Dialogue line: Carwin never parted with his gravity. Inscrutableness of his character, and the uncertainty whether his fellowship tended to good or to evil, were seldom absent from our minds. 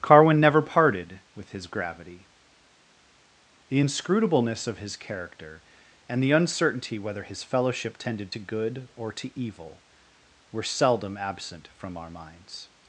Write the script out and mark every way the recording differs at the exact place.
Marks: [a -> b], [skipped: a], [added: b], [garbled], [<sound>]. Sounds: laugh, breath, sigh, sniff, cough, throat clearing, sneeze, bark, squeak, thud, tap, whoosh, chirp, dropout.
Carwin never parted with his gravity. [added: The] Inscrutableness of his character, and the uncertainty whether his fellowship tended to good or to evil, were seldom absent from our minds.